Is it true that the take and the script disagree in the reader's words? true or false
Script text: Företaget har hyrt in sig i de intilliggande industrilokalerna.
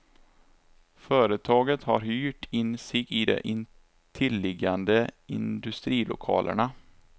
false